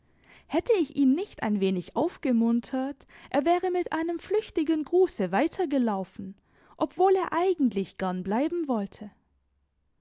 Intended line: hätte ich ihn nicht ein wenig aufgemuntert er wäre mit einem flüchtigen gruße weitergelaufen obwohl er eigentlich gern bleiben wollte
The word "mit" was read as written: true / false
true